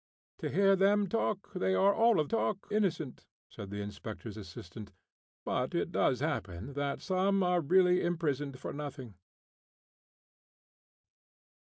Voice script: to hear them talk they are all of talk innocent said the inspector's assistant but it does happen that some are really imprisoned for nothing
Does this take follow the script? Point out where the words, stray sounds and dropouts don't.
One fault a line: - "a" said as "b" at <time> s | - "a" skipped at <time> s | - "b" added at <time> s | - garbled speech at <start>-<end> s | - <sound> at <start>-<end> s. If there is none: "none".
none